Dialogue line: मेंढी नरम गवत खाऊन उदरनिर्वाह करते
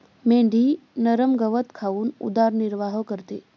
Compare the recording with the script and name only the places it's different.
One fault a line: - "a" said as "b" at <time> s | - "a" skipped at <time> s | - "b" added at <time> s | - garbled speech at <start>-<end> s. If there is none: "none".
none